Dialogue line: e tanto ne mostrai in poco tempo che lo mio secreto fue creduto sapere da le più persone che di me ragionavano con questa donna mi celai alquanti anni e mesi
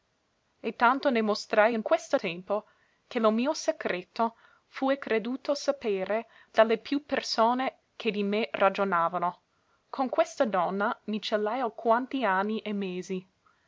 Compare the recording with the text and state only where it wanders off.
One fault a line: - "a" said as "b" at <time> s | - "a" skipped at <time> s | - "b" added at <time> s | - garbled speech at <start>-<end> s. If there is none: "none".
- "poco" said as "questa" at 1.8 s